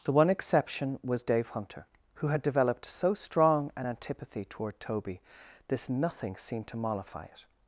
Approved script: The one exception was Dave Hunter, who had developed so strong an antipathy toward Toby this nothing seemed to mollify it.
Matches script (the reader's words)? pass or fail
pass